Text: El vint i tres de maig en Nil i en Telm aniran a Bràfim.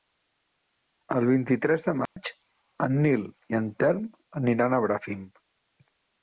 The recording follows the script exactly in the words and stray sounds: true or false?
false